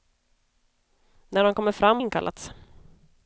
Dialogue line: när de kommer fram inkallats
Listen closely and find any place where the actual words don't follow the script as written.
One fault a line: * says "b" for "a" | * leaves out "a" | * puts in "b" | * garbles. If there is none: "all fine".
all fine